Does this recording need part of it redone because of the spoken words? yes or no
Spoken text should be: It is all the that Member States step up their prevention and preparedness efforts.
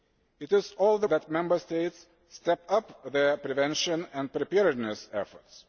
no